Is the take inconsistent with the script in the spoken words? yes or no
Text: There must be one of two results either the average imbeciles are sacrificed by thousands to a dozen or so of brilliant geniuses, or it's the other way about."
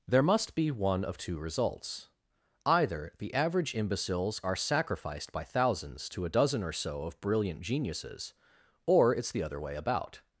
no